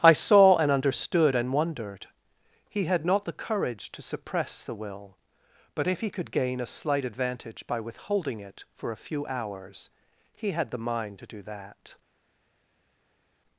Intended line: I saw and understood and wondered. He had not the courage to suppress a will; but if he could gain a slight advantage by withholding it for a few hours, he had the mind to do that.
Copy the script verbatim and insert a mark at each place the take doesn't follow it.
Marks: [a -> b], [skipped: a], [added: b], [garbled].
I saw and understood and wondered. He had not the courage to suppress [a -> the] will; but if he could gain a slight advantage by withholding it for a few hours, he had the mind to do that.